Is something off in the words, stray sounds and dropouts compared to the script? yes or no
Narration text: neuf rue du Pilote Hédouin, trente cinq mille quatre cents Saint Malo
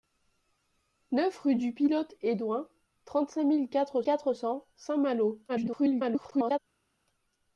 yes